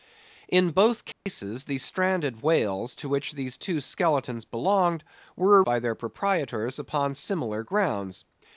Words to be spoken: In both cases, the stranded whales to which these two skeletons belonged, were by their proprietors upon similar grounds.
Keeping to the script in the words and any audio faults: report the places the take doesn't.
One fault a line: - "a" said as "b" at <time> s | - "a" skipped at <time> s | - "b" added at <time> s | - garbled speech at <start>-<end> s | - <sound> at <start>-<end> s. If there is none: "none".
- dropout at 1.1-1.3 s